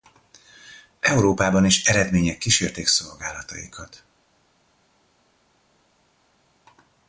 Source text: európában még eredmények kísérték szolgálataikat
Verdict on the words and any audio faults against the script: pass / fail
fail